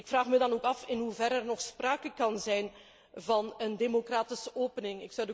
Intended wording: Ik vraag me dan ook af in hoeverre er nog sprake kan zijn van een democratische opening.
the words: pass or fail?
pass